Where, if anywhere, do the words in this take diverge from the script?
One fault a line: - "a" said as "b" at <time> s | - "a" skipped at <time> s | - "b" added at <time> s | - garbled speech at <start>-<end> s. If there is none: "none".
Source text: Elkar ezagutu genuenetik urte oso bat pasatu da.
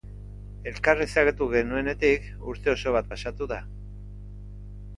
none